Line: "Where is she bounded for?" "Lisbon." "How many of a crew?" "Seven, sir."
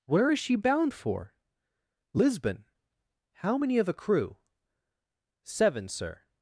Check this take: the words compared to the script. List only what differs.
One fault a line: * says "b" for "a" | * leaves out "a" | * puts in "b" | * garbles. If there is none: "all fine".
* says "bound" for "bounded"